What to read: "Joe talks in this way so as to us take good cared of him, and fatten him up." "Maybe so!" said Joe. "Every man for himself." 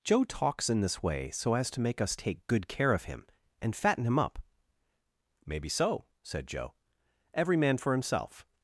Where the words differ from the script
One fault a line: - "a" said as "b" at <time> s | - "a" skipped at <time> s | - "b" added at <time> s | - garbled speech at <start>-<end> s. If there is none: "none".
- "make" added at 1.8 s
- "cared" said as "care" at 2.7 s